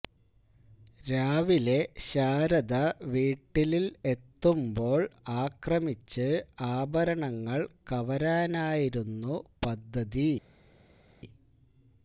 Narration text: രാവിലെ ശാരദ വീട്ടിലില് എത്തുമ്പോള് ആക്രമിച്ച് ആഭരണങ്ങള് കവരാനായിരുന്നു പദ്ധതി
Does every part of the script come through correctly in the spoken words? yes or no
yes